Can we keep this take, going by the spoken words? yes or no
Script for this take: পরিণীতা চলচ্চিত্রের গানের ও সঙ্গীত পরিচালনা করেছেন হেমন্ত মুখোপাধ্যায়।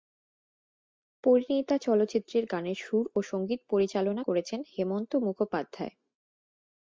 no